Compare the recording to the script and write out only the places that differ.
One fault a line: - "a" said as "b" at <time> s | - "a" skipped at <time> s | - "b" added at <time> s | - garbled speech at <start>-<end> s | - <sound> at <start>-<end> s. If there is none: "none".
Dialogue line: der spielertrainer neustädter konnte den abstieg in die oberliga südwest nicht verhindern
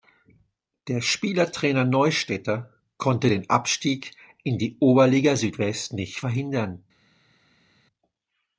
none